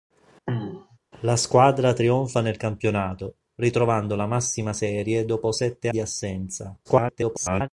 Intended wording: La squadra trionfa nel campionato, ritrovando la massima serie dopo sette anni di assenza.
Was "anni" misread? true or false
true